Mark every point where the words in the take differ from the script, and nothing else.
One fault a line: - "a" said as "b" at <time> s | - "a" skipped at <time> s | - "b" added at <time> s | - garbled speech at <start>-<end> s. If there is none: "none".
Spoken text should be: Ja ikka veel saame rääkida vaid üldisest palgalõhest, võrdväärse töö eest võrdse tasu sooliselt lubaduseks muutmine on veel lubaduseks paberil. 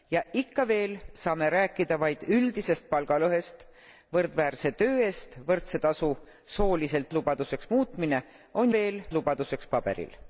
none